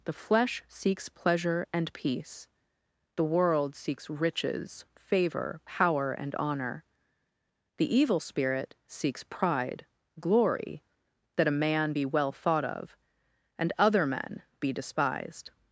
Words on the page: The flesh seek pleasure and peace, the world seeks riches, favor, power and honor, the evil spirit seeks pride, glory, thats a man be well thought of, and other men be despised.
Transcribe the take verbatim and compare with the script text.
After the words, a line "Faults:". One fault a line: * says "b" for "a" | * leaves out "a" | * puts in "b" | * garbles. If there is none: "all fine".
The flesh seeks pleasure and peace, the world seeks riches, favor, power and honor, the evil spirit seeks pride, glory, that a man be well thought of, and other men be despised.
Faults:
* says "seeks" for "seek"
* says "that" for "thats"